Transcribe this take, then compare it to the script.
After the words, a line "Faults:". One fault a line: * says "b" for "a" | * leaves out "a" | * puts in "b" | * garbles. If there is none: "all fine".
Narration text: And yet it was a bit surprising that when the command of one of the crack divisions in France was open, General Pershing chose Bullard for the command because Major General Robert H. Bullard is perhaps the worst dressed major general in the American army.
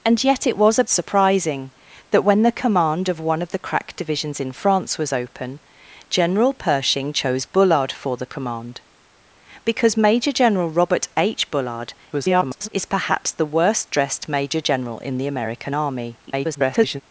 And yet it was a surprising that when the command of one of the crack divisions in France was open, General Pershing chose Bullard for the command because Major General Robert H. Bullard [garbled] is perhaps the worst dressed major general in the American army. [garbled]
Faults:
* leaves out "bit"
* garbles
* garbles